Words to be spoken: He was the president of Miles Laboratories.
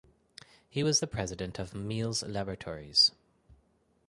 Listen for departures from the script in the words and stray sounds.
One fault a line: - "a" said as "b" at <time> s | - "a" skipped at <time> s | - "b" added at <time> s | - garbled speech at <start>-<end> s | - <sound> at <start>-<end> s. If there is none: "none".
none